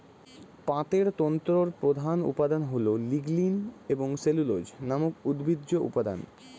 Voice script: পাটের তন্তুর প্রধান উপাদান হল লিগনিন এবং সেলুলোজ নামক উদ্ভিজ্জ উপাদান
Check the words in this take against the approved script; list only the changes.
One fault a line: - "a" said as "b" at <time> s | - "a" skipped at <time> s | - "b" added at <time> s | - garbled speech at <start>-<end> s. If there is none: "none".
none